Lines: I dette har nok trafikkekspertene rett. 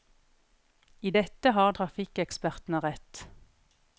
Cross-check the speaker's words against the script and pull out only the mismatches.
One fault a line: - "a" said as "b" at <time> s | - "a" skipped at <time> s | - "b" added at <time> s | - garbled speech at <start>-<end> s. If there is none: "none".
- "nok" skipped at 1.7 s